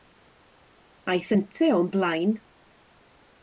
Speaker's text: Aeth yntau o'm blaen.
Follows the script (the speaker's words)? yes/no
yes